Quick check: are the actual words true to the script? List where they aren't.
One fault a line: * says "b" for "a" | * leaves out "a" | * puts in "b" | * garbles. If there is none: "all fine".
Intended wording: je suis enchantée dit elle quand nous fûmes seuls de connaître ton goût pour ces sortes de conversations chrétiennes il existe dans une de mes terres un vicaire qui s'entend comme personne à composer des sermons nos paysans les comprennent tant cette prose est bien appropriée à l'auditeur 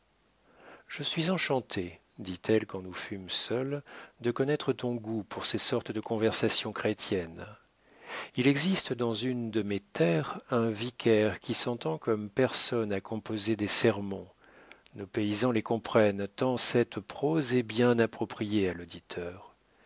all fine